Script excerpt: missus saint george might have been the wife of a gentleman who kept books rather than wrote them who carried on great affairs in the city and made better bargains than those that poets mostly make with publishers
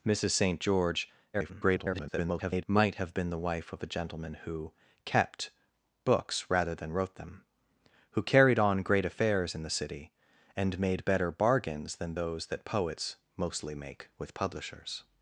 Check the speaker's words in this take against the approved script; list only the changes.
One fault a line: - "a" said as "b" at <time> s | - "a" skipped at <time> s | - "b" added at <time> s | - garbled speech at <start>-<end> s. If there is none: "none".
- garbled speech at 1.3-2.6 s